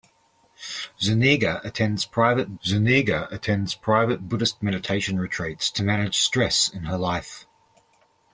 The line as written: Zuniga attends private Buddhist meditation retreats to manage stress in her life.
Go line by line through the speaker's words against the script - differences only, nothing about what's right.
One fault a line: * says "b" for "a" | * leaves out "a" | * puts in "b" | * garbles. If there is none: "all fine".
* puts in "zuniga attends private"